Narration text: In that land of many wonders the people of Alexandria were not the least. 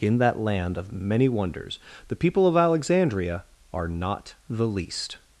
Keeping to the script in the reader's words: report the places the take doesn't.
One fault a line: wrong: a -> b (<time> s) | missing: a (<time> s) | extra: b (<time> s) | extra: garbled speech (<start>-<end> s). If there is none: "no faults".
wrong: were -> are (3.7 s)